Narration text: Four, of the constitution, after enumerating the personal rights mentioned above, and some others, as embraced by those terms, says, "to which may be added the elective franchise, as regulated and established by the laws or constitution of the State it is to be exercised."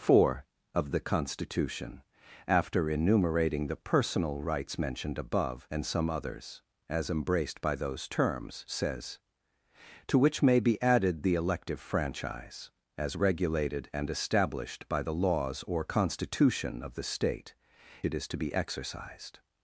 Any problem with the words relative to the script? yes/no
no